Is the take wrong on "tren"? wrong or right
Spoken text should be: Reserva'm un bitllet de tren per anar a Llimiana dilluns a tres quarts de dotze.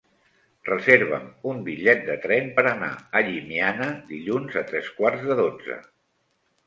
right